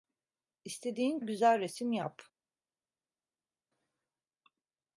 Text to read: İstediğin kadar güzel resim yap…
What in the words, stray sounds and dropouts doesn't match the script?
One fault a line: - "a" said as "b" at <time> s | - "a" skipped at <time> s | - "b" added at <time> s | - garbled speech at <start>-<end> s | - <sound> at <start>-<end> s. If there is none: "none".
- "kadar" skipped at 1.2 s